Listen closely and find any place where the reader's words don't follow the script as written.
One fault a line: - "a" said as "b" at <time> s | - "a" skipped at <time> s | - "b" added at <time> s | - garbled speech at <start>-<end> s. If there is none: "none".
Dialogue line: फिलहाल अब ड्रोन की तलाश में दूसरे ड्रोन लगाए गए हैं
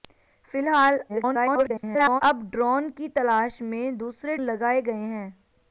- garbled speech at 1.1-2.2 s
- "ड्रोन" skipped at 4.4 s